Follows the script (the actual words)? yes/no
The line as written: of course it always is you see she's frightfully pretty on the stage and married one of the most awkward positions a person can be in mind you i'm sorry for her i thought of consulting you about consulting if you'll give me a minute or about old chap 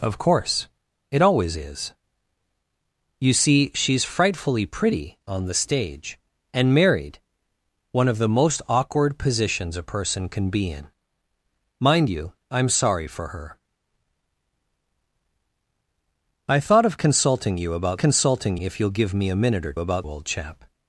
yes